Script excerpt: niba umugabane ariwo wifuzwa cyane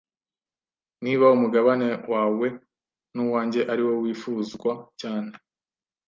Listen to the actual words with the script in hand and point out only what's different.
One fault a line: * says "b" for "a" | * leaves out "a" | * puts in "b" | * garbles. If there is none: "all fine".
* puts in "wawe nuwanjye"